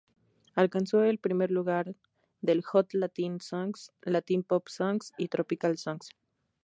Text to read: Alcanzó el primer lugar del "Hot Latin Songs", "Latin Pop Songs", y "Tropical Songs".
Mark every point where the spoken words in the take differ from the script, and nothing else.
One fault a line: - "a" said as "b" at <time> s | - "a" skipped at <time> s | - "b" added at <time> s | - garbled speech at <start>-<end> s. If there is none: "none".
none